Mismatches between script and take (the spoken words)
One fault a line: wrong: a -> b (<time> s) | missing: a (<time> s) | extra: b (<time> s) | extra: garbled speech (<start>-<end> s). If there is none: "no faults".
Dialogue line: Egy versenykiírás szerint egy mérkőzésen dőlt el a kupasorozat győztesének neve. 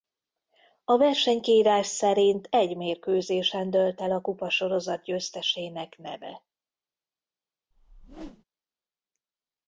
wrong: Egy -> A (0.8 s)